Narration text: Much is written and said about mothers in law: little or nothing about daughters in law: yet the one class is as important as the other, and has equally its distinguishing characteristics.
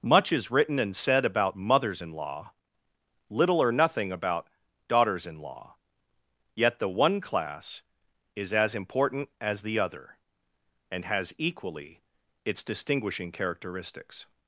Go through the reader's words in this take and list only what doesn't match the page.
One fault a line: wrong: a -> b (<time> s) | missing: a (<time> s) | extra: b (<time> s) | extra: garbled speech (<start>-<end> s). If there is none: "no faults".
no faults